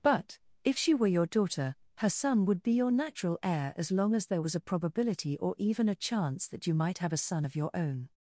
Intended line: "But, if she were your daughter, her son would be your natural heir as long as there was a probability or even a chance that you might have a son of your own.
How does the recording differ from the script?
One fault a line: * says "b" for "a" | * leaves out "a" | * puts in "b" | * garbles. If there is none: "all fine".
all fine